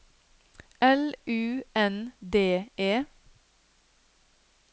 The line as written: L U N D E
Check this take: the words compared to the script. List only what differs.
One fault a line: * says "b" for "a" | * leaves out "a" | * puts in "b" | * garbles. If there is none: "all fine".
all fine